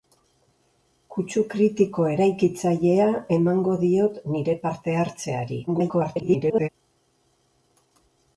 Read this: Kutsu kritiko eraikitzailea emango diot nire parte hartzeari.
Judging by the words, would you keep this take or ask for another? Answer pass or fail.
fail